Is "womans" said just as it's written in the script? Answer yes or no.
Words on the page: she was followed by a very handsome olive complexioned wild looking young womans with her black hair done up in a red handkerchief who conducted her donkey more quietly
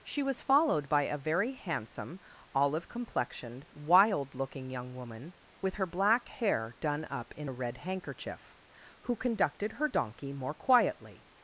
no